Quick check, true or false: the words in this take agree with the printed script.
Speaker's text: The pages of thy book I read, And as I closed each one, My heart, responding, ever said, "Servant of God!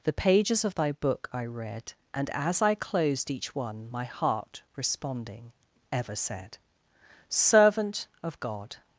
true